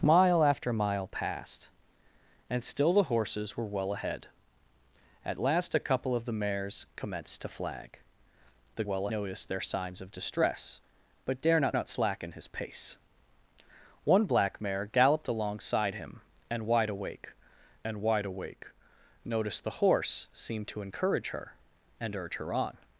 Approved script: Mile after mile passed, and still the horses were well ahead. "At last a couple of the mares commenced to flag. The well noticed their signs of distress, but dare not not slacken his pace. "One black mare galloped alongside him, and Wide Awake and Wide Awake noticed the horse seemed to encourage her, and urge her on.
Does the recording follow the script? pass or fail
pass